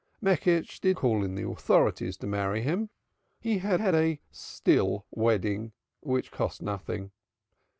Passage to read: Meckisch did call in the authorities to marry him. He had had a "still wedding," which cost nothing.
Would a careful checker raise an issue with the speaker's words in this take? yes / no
no